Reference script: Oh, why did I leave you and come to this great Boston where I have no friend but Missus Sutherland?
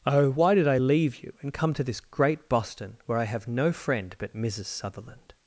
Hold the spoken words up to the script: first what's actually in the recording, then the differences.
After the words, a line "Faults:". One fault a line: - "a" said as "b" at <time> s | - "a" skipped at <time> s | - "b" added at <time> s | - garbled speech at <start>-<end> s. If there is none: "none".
Oh, why did I leave you and come to this great Boston where I have no friend but Missus Sutherland?
Faults:
none